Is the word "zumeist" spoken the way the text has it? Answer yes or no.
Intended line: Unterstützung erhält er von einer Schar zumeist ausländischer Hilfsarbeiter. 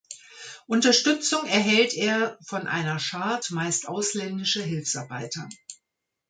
yes